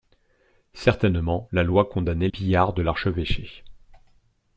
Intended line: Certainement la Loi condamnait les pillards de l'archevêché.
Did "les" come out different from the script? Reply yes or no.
yes